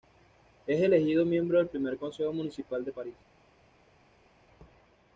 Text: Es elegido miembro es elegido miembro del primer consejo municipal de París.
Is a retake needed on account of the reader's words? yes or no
yes